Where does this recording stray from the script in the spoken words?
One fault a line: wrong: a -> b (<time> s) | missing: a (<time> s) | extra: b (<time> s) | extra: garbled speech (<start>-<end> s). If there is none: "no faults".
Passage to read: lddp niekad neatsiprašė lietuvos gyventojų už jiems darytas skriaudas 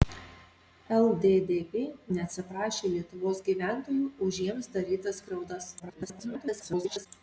missing: niekad (1.8 s)
extra: garbled speech (5.8-7.1 s)